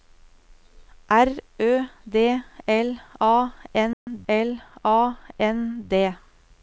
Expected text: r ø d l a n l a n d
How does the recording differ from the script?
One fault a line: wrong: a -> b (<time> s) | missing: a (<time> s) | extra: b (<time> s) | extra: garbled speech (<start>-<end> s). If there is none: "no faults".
no faults